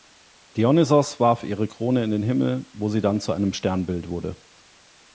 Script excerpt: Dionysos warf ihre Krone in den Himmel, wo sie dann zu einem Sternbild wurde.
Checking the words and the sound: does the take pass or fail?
pass